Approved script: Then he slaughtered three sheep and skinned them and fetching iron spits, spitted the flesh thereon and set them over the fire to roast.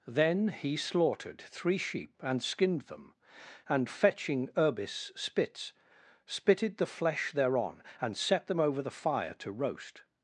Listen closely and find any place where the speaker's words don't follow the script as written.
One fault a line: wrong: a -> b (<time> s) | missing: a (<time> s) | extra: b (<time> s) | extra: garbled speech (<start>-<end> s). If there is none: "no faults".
wrong: iron -> urbis (4.6 s)